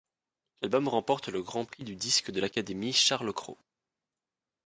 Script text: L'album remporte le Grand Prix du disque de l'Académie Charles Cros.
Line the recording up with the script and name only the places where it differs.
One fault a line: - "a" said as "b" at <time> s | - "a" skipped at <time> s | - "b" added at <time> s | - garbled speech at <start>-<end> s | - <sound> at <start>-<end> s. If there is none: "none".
none